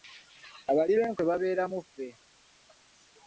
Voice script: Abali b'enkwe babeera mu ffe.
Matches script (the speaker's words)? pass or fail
pass